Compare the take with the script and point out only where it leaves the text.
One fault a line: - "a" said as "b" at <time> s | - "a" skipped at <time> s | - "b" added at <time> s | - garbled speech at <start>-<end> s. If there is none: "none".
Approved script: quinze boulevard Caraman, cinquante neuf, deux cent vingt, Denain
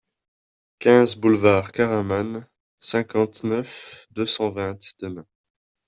none